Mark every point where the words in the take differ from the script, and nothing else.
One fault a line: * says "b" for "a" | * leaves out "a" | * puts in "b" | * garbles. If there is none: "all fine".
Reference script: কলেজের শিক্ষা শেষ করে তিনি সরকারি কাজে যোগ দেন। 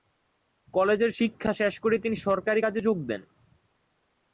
all fine